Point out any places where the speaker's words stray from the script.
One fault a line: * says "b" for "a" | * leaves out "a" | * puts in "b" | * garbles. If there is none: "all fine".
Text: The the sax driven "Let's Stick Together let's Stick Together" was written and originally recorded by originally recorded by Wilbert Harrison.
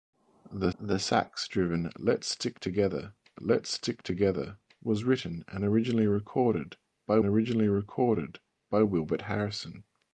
all fine